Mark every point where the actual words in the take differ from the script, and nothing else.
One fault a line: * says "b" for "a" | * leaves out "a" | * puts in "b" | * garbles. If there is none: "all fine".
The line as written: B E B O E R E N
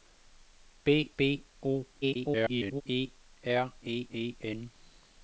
* leaves out "E"
* garbles
* puts in "E"